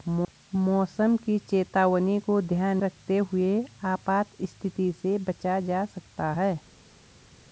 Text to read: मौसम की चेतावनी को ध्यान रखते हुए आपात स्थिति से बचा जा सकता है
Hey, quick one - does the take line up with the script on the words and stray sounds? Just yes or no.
yes